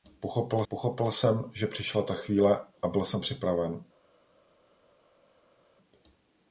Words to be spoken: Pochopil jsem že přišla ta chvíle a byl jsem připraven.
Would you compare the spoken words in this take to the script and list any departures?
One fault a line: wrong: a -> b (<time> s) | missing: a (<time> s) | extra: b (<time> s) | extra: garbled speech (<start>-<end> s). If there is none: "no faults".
extra: pochopil (0.7 s)